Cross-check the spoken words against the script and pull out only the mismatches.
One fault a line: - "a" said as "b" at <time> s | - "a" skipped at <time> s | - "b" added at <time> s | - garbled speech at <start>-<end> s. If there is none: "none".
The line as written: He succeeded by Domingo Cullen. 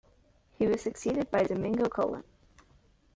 - "was" added at 0.7 s